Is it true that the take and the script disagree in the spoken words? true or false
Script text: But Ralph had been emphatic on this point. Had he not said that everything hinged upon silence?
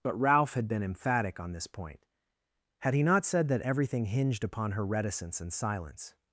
true